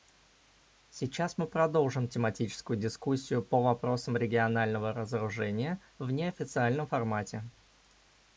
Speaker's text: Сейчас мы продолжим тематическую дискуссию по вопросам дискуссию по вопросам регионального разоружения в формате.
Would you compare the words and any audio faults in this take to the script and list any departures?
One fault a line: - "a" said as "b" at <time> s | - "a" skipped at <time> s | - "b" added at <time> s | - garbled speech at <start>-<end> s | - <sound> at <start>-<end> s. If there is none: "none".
- "дискуссию по вопросам" skipped at 4.2 s
- "неофициальном" added at 6.1 s